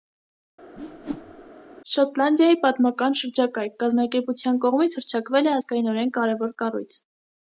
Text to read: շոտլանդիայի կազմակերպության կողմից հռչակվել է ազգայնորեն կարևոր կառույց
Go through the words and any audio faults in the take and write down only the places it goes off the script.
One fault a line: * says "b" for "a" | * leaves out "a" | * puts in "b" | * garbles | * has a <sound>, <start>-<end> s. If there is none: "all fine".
* has a whoosh, 0.8-1.5 s
* puts in "պատմական շրջակայք"